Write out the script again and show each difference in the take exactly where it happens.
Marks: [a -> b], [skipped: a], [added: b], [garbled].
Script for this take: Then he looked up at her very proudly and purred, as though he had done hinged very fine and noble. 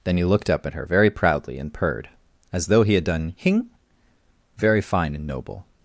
Then he looked up at her very proudly and purred, as though he had done [hinged -> hing] very fine and noble.